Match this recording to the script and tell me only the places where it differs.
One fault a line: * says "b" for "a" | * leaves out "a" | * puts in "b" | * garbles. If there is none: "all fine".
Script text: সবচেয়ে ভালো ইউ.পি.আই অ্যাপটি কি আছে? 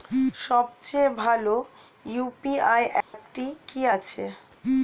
all fine